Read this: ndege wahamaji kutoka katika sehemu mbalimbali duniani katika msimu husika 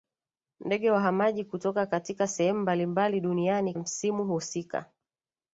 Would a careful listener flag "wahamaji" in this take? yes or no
no